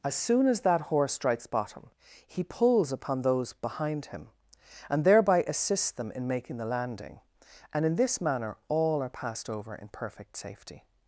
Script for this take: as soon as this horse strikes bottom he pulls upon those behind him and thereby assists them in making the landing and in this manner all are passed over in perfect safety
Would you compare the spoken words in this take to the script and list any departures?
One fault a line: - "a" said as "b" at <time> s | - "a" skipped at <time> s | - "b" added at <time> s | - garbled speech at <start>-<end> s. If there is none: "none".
- "this" said as "that" at 0.6 s